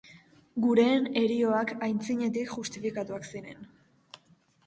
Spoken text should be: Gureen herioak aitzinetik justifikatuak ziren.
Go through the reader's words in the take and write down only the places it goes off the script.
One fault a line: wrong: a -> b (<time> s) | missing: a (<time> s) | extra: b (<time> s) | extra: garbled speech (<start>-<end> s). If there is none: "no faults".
no faults